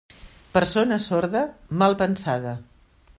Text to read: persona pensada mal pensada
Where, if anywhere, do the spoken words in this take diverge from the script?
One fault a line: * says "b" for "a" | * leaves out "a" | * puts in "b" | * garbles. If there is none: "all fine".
* says "sorda" for "pensada"